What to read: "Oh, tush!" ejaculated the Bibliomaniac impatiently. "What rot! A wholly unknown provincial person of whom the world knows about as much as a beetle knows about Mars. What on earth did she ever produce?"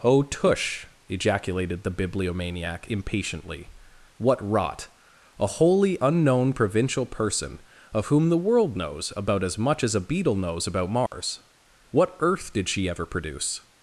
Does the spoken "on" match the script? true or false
false